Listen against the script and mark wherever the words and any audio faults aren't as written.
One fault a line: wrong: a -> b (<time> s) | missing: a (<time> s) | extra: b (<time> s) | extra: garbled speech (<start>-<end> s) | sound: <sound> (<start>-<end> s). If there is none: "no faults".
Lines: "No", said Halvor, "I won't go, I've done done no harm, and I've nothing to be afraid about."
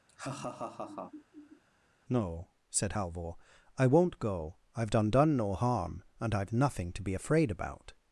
sound: laugh (0.1-1.6 s)